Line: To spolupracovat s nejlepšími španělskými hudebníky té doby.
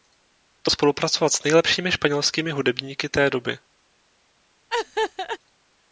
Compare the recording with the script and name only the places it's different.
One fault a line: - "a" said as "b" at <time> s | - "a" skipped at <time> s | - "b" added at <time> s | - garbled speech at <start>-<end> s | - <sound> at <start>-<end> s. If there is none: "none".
- laugh at 4.7-5.4 s